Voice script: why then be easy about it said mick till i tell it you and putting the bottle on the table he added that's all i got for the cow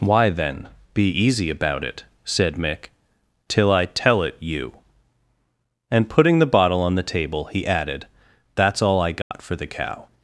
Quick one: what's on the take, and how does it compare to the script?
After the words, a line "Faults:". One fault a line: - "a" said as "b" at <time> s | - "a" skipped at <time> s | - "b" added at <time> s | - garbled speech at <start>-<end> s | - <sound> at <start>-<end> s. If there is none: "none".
why then be easy about it said mick till i tell it you and putting the bottle on the table he added that's all i got for the cow
Faults:
- dropout at 9.2-9.3 s